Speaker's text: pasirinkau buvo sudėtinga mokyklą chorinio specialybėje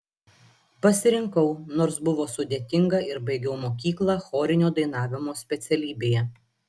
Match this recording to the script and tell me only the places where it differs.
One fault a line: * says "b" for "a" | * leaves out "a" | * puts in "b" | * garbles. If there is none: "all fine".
* puts in "nors"
* puts in "ir baigiau"
* puts in "dainavimo"